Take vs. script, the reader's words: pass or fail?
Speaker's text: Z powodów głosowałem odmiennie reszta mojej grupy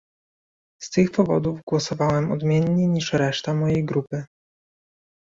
fail